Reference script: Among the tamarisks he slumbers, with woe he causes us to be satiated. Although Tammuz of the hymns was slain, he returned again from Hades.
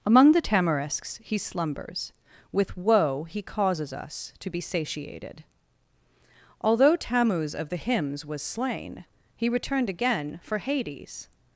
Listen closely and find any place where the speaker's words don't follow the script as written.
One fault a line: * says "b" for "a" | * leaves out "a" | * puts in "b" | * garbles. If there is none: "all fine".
* says "for" for "from"